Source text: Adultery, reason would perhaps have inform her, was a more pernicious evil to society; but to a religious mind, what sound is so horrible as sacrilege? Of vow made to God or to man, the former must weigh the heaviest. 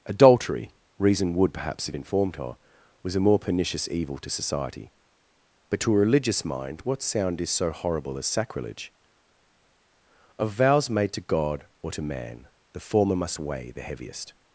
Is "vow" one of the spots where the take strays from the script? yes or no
yes